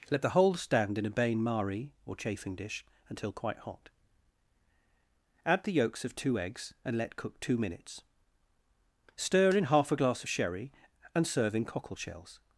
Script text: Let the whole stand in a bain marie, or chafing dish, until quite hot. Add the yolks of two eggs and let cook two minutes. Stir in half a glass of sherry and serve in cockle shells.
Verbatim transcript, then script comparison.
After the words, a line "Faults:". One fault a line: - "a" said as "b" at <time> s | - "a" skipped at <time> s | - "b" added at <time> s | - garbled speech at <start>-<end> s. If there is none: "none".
Let the whole stand in a bain marie, or chafing dish, until quite hot. Add the yolks of two eggs and let cook two minutes. Stir in half a glass of sherry and serve in cockle shells.
Faults:
none